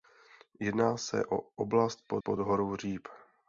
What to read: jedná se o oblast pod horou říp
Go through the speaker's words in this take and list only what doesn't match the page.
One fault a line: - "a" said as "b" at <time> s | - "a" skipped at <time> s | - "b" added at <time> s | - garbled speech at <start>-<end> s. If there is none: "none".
- "pod" added at 2.2 s